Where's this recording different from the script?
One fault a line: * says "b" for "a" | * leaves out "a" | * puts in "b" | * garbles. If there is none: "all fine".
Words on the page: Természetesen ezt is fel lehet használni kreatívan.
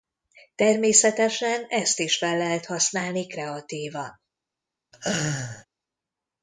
all fine